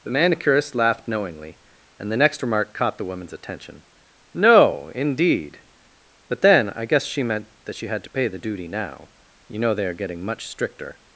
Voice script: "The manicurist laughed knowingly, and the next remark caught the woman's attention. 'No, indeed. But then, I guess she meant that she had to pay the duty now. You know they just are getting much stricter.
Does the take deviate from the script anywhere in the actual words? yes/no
yes